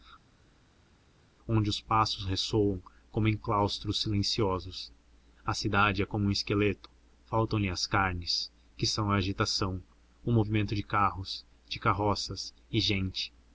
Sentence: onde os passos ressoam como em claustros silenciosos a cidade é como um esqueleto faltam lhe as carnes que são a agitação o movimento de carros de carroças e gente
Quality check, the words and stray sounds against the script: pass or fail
pass